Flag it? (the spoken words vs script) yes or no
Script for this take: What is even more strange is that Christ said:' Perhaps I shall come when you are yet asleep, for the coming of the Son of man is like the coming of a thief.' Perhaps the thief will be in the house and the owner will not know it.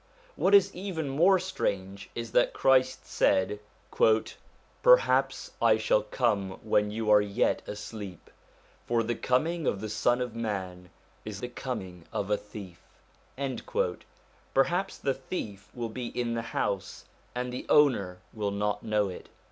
yes